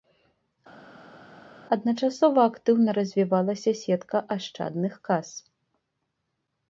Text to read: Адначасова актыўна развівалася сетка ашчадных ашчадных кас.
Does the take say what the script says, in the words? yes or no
no